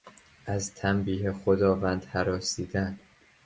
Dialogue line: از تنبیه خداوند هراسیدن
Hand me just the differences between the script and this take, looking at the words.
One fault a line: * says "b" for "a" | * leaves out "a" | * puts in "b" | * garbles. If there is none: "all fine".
all fine